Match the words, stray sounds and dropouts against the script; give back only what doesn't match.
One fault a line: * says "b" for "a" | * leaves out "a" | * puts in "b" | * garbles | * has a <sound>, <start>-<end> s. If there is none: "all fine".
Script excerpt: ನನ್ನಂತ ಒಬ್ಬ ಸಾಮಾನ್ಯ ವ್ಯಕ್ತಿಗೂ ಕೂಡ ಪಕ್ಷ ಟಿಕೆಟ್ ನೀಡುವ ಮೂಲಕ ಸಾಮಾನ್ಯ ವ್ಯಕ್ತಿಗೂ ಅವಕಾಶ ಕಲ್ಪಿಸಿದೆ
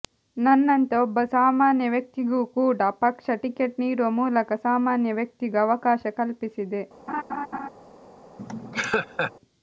* has a laugh, 7.1-7.7 s
* has a laugh, 8.4-9.3 s